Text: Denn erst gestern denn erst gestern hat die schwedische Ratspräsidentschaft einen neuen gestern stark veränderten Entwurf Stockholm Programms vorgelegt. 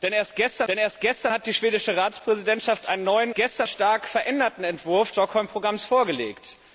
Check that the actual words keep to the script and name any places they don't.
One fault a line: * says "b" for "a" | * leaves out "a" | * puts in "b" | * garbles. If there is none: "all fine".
all fine